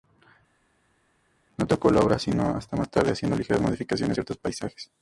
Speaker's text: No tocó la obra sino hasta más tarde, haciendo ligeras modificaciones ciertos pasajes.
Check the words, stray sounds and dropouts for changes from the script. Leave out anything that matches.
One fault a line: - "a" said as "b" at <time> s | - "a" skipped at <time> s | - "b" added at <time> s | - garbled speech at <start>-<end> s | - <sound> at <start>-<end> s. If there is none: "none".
none